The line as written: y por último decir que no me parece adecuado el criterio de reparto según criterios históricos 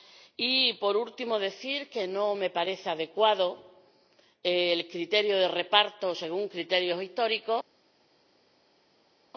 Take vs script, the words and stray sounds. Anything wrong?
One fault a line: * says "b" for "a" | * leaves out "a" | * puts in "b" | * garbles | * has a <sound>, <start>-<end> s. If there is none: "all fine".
all fine